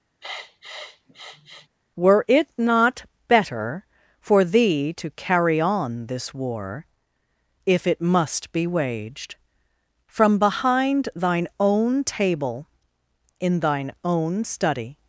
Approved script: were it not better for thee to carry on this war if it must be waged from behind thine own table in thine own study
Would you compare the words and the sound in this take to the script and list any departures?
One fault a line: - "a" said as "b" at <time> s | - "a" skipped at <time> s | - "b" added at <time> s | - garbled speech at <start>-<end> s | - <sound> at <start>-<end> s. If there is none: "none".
- sniff at 0.2-1.7 s